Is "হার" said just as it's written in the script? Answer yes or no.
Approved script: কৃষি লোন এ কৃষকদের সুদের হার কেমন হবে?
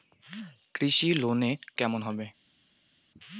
no